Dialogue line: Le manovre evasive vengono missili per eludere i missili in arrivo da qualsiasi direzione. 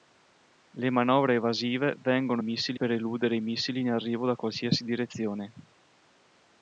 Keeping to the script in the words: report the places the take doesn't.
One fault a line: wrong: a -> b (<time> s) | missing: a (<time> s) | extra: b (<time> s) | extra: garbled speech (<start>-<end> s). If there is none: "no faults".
no faults